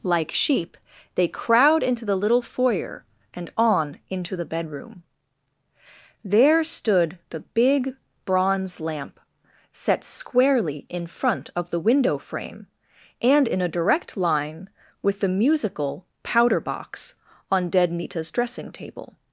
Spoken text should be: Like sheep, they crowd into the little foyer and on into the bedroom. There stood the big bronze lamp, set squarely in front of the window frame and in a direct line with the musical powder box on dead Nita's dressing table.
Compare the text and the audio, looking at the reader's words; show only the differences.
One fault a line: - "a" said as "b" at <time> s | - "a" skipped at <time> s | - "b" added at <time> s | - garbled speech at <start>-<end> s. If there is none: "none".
none